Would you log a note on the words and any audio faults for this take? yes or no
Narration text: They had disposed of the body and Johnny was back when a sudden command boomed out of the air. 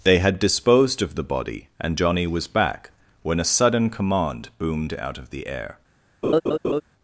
yes